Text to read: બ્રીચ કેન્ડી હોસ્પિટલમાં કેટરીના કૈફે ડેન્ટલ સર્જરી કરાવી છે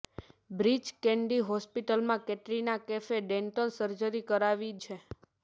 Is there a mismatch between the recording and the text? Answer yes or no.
no